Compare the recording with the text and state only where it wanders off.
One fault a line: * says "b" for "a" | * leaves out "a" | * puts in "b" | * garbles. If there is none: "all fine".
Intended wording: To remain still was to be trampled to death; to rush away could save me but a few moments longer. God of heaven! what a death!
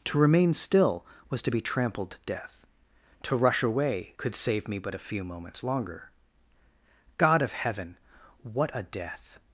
all fine